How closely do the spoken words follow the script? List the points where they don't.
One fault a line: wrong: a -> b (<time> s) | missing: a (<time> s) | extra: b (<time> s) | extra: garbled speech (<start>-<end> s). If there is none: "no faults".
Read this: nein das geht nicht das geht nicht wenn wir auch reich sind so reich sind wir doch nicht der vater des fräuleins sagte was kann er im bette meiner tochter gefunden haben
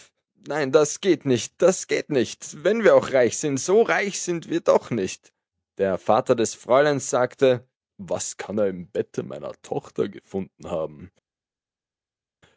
no faults